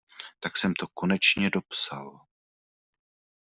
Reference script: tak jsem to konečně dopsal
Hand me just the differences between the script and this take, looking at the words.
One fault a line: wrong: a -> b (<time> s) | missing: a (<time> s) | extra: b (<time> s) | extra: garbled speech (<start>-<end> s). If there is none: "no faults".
no faults